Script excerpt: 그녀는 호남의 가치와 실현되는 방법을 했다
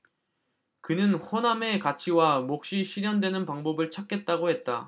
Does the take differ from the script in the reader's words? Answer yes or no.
yes